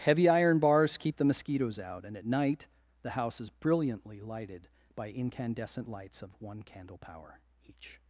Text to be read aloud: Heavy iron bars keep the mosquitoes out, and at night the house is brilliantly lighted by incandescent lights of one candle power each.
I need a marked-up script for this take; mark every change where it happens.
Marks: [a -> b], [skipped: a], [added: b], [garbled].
Heavy iron bars keep the mosquitoes out, and at night the house is brilliantly lighted by incandescent lights of one candle power each.